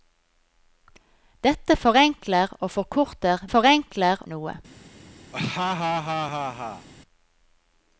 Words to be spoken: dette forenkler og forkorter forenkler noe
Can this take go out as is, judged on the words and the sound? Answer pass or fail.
fail